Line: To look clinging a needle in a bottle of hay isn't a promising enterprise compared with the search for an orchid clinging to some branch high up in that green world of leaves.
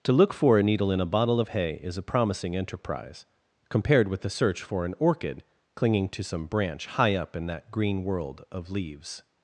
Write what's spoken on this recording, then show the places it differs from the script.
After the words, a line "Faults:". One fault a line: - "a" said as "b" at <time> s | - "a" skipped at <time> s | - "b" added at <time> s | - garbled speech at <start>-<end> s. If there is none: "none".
To look for a needle in a bottle of hay is a promising enterprise compared with the search for an orchid clinging to some branch high up in that green world of leaves.
Faults:
- "clinging" said as "for" at 0.3 s
- "isn't" said as "is" at 1.8 s